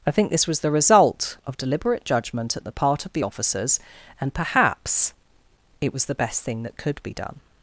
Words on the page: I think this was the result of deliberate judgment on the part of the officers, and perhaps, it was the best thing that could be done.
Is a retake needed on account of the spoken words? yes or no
yes